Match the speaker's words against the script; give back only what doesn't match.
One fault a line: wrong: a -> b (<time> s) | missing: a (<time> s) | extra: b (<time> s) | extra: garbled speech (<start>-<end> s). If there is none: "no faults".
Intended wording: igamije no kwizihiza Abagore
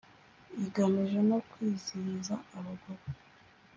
no faults